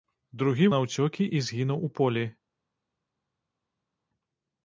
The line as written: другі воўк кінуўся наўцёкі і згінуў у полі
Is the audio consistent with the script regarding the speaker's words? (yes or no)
no